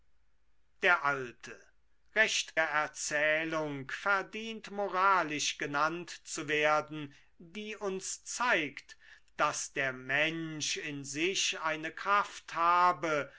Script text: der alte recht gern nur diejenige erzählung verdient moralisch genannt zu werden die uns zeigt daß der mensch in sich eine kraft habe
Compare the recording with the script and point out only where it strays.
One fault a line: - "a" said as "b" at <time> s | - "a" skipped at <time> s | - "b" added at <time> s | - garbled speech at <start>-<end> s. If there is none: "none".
- "gern nur diejenige" skipped at 2.6 s